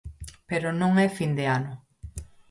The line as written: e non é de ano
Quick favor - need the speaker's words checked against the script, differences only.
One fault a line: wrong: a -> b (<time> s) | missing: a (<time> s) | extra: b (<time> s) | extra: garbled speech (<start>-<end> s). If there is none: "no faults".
wrong: e -> pero (0.5 s)
extra: fin (1.2 s)